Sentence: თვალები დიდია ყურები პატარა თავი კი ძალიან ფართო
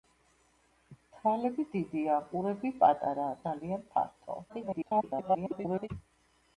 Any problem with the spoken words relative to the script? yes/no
yes